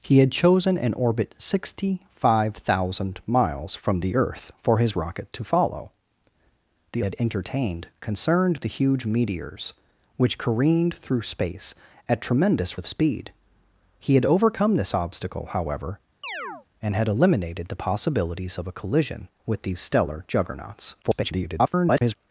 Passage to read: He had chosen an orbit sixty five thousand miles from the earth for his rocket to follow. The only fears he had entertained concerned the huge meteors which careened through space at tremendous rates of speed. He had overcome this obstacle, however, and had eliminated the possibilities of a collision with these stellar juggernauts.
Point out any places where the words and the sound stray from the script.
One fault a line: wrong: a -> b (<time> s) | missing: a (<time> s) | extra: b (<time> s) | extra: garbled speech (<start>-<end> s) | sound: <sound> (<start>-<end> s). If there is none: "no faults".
missing: only fears he (7.0 s)
missing: rates (12.8 s)
sound: chirp (16.2-16.7 s)
extra: garbled speech (21.0-22.2 s)